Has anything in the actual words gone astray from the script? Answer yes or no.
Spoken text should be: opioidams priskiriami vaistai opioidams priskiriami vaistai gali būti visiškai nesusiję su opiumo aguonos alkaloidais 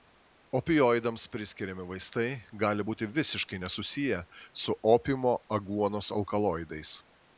yes